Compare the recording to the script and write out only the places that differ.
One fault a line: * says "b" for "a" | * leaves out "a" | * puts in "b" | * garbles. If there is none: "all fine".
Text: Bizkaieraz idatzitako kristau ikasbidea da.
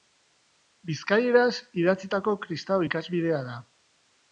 all fine